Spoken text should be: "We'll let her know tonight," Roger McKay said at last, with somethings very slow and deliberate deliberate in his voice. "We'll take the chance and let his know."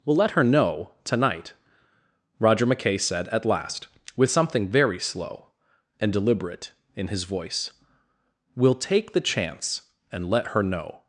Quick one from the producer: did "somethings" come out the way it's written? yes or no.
no